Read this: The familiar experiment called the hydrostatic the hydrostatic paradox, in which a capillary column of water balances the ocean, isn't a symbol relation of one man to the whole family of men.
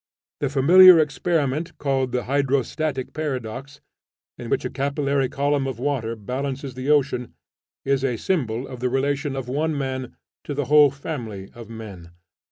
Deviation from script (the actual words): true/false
true